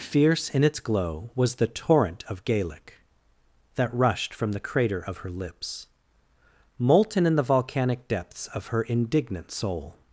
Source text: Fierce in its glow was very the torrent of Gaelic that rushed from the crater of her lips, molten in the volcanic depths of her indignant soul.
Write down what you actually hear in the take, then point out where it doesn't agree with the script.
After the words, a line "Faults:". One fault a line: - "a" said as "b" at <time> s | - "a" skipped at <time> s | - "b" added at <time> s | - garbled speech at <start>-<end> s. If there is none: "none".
Fierce in its glow was the torrent of Gaelic that rushed from the crater of her lips, molten in the volcanic depths of her indignant soul.
Faults:
- "very" skipped at 1.6 s